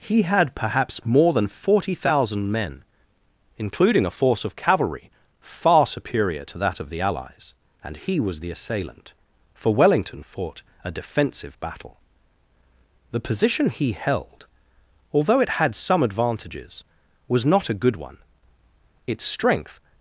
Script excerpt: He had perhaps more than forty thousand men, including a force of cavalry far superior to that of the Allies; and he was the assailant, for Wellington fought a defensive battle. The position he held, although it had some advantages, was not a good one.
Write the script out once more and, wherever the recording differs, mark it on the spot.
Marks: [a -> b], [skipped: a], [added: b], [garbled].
He had perhaps more than forty thousand men, including a force of cavalry far superior to that of the Allies; and he was the assailant, for Wellington fought a defensive battle. The position he held, although it had some advantages, was not a good one. [added: Its strength]